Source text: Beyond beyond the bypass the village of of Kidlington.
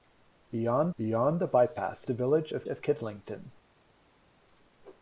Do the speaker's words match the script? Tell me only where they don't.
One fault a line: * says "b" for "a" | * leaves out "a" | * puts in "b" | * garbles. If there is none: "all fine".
all fine